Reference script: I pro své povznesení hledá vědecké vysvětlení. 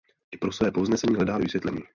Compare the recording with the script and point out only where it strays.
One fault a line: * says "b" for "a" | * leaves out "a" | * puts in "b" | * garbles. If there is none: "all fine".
* leaves out "vědecké"